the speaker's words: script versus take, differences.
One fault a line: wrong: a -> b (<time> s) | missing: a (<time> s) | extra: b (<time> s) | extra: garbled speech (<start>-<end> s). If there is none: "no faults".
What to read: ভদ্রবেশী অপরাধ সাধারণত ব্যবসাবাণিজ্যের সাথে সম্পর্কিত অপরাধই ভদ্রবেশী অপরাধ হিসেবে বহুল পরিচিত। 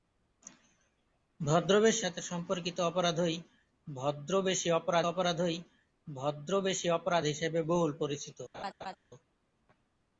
wrong: অপরাধ সাধারণত ব্যবসাবাণিজ্যের সাথে সম্পর্কিত -> সাথে সম্পর্কিত অপরাধই ভদ্রবেশী অপরাধ (2.0 s)